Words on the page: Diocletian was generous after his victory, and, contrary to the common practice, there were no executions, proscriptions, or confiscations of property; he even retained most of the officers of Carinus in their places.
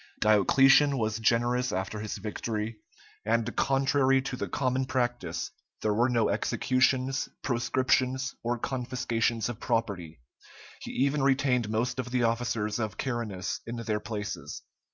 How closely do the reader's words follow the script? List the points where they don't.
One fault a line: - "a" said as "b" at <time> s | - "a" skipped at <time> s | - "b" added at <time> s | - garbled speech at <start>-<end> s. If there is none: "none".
none